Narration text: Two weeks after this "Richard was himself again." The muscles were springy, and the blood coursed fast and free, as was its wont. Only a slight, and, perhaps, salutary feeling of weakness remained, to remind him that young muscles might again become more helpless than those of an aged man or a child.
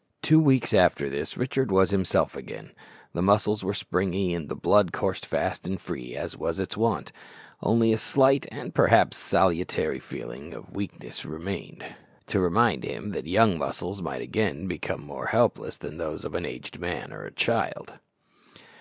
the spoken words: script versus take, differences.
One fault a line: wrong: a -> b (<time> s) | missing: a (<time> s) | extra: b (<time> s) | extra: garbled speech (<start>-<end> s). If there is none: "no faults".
no faults